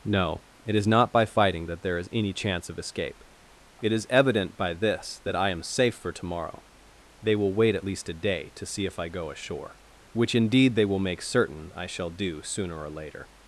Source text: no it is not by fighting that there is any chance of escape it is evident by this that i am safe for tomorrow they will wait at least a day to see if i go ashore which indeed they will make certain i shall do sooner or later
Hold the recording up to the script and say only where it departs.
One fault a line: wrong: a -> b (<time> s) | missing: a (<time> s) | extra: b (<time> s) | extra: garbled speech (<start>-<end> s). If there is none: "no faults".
no faults